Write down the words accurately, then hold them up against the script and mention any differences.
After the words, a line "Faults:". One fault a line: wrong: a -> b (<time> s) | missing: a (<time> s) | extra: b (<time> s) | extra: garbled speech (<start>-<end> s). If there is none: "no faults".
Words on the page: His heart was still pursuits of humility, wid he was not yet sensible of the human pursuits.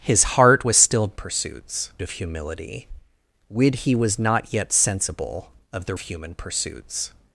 His heart was still pursuits of humility, wid he was not yet sensible of the human pursuits.
Faults:
no faults